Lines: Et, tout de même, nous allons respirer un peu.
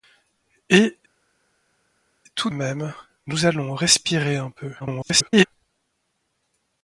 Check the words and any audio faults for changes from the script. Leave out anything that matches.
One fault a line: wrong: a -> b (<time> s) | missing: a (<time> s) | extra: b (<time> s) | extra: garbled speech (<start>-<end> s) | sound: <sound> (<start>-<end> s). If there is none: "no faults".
missing: de (2.5 s)
extra: garbled speech (4.8-5.5 s)